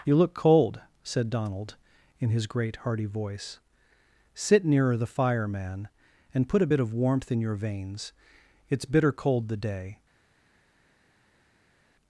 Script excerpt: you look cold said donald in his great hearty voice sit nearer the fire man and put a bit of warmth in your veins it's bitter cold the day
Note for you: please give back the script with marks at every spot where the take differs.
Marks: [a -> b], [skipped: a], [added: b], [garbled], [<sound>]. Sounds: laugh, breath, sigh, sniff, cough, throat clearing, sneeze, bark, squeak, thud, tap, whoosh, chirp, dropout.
you look cold said donald in his great hearty voice sit nearer the fire man and put a bit of warmth in your veins it's bitter cold the day